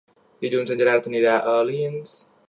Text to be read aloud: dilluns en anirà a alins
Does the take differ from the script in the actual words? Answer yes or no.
yes